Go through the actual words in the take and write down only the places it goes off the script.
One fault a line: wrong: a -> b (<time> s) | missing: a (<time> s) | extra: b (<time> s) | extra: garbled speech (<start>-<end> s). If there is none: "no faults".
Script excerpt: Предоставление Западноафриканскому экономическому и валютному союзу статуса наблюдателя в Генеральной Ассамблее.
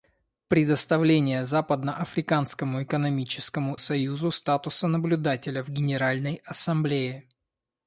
missing: и валютному (3.8 s)